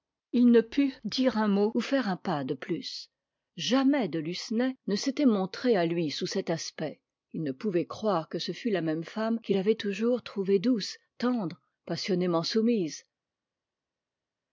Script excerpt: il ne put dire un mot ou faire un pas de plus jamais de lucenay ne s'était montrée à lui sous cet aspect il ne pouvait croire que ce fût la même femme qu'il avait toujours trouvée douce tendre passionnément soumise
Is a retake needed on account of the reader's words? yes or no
no